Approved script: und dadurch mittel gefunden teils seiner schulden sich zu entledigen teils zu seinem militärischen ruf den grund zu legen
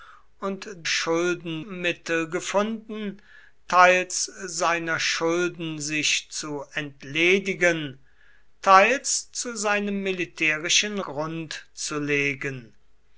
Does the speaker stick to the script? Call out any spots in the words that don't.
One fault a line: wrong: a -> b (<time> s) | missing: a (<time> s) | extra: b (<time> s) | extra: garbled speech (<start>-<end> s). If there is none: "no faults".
wrong: dadurch -> schulden (0.9 s)
missing: ruf den (11.0 s)